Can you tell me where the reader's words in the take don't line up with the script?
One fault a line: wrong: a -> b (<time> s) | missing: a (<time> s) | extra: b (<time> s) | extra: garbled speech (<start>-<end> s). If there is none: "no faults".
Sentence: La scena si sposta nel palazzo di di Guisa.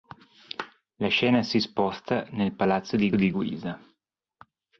no faults